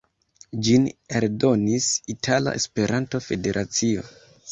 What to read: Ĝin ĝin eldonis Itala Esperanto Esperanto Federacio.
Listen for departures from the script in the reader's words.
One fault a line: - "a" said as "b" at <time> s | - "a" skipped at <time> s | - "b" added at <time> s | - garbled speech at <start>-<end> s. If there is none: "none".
- "ĝin" skipped at 0.8 s
- "Esperanto" skipped at 3.2 s